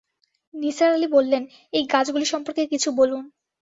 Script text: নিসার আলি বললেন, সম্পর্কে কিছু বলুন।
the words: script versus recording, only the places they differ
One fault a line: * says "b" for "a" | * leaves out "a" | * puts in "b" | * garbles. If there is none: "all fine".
* puts in "এই গাছগুলি"